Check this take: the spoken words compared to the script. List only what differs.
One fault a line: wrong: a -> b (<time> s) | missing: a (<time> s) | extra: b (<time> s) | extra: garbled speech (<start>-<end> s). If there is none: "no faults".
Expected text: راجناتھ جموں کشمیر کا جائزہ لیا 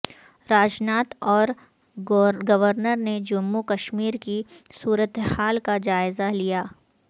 extra: اور گورنر نے (1.3 s)
extra: کی صورتحال (4.2 s)